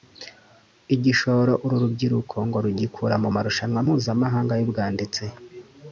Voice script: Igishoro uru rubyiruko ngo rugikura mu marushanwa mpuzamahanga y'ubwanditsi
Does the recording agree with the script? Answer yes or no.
yes